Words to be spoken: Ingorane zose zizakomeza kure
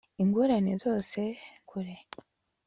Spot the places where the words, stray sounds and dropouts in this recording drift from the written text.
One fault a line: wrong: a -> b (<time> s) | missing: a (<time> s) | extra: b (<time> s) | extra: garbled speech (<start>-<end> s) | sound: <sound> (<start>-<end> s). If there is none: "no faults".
missing: zizakomeza (1.2 s)